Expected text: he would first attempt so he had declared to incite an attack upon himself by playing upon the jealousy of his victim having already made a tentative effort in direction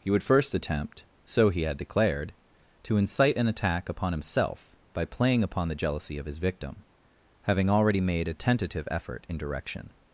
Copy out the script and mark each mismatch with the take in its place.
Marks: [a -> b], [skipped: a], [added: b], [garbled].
he would first attempt so he had declared to incite an attack upon himself by playing upon the jealousy of his victim having already made a tentative effort in direction